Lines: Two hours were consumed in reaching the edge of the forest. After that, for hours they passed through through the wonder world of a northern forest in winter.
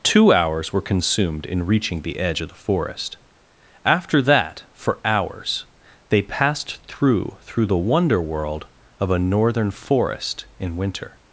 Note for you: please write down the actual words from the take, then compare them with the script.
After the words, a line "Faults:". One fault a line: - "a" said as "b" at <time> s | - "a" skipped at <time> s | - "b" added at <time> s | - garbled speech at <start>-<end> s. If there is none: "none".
Two hours were consumed in reaching the edge of the forest. After that, for hours they passed through through the wonder world of a northern forest in winter.
Faults:
none